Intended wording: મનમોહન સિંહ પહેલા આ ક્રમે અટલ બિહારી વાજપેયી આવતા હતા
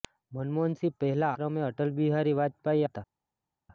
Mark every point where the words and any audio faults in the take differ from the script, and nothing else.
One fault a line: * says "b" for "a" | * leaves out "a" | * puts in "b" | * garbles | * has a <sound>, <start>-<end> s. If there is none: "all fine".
* leaves out "આ"
* leaves out "આવતા"